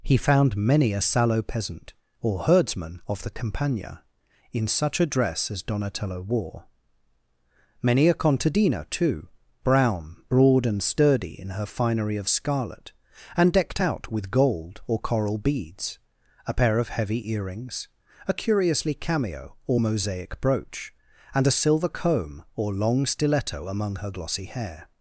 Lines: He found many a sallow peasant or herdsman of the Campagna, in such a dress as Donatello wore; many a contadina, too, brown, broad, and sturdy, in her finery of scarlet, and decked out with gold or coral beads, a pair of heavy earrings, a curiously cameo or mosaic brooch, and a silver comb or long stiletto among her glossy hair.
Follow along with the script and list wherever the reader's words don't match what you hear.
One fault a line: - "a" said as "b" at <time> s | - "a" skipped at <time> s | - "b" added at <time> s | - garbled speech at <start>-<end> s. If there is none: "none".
none